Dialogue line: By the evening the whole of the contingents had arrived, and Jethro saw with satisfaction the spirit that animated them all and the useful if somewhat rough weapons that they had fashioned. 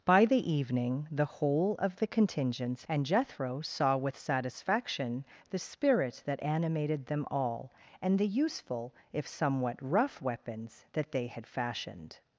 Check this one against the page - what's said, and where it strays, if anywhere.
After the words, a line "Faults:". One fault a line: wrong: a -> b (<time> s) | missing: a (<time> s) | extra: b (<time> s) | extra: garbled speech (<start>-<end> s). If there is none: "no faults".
By the evening the whole of the contingents and Jethro saw with satisfaction the spirit that animated them all and the useful if somewhat rough weapons that they had fashioned.
Faults:
missing: had arrived (2.9 s)